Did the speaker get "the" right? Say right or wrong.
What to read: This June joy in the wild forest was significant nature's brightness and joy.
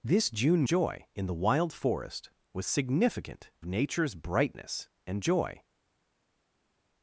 right